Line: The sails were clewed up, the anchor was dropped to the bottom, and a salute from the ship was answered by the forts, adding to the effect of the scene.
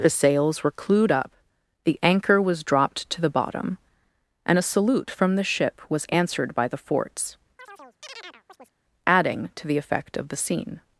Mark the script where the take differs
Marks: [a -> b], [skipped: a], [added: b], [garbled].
The sails were clewed up, the anchor was dropped to the bottom, and a salute from the ship was answered by the forts, adding to the effect of the scene.